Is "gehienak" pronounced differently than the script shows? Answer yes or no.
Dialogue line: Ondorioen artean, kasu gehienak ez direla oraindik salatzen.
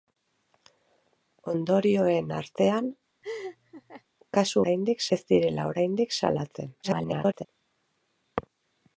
yes